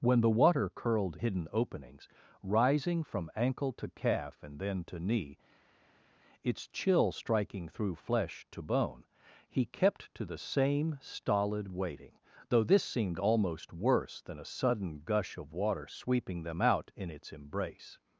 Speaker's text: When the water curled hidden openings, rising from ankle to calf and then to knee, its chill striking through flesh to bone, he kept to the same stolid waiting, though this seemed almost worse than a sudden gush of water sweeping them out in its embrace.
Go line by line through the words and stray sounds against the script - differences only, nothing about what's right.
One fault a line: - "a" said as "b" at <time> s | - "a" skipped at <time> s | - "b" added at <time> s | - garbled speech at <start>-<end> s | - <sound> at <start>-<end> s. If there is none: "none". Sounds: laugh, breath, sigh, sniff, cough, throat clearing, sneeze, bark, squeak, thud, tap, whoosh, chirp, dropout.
none